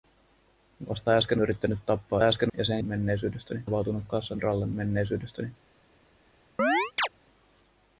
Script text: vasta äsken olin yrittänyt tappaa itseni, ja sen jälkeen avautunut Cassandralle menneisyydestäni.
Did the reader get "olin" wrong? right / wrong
wrong